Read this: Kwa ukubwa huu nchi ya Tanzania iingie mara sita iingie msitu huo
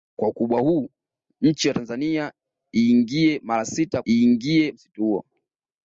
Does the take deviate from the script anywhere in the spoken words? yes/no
no